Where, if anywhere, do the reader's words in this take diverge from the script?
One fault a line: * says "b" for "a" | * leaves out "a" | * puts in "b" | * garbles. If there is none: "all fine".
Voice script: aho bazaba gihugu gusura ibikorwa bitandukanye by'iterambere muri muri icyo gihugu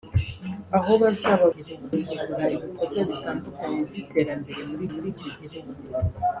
all fine